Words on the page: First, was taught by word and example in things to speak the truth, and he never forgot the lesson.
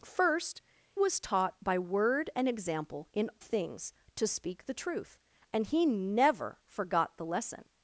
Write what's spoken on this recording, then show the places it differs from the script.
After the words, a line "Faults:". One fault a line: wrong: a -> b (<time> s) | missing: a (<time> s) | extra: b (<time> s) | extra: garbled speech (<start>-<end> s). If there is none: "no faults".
First, was taught by word and example in things to speak the truth, and he never forgot the lesson.
Faults:
no faults